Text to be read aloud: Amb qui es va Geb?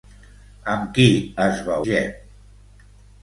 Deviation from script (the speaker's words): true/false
false